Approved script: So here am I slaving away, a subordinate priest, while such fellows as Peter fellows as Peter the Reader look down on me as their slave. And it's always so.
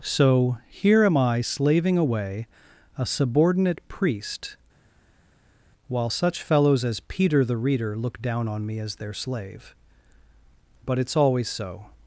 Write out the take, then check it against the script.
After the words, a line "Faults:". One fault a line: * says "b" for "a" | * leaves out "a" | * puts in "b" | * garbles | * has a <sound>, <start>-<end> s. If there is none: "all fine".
So here am I slaving away, a subordinate priest, while such fellows as Peter the Reader look down on me as their slave. But it's always so.
Faults:
* leaves out "fellows as Peter"
* says "But" for "And"